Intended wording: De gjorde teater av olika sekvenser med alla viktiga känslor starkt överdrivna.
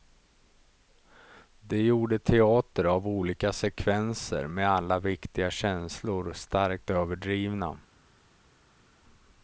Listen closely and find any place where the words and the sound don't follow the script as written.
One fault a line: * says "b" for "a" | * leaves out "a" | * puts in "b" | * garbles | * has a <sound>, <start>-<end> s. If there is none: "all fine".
all fine